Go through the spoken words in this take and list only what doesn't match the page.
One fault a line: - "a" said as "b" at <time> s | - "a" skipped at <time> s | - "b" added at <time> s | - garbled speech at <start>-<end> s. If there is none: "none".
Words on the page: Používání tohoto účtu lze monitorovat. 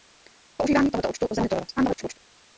- garbled speech at 1.8-2.2 s